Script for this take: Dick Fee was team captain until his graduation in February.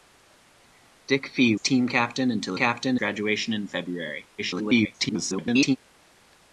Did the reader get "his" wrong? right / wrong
wrong